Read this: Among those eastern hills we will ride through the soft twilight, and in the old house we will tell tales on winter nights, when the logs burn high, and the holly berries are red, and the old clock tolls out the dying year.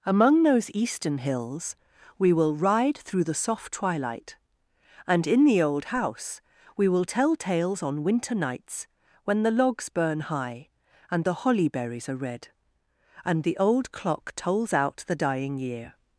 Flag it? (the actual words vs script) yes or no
no